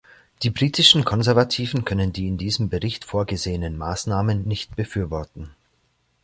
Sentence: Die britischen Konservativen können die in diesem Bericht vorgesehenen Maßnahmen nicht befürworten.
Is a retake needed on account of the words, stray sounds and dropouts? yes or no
no